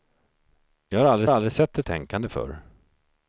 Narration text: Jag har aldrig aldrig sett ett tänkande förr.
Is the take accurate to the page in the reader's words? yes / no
yes